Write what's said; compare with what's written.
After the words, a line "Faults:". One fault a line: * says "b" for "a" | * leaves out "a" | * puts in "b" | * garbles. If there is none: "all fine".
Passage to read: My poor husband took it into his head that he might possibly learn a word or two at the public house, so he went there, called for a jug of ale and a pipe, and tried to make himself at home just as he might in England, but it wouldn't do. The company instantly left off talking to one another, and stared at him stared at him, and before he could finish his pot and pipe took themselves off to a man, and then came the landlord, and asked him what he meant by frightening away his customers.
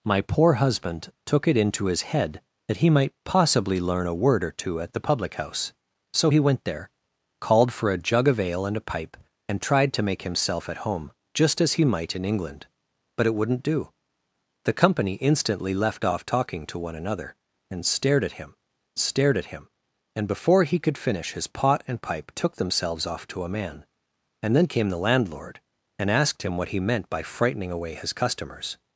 My poor husband took it into his head that he might possibly learn a word or two at the public house, so he went there, called for a jug of ale and a pipe, and tried to make himself at home just as he might in England, but it wouldn't do. The company instantly left off talking to one another, and stared at him stared at him, and before he could finish his pot and pipe took themselves off to a man, and then came the landlord, and asked him what he meant by frightening away his customers.
Faults:
all fine